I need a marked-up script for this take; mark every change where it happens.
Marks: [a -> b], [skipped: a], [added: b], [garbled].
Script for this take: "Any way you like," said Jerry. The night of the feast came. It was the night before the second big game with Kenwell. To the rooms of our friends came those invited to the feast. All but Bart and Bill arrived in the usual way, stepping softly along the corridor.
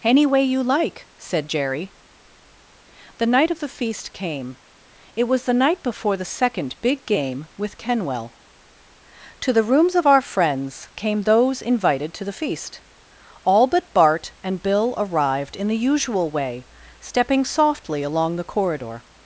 "Any way you like," said Jerry. The night of the feast came. It was the night before the second big game with Kenwell. To the rooms of our friends came those invited to the feast. All but Bart and Bill arrived in the usual way, stepping softly along the corridor.